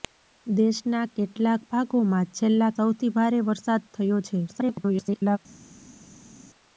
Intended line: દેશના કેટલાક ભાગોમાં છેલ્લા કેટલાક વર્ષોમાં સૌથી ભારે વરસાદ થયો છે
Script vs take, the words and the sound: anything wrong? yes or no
yes